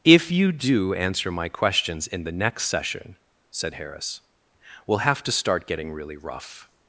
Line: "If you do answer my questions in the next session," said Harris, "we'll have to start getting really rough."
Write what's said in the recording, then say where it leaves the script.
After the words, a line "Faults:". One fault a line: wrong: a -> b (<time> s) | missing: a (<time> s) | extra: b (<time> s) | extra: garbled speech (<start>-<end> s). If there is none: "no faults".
"If you do answer my questions in the next session," said Harris, "we'll have to start getting really rough."
Faults:
no faults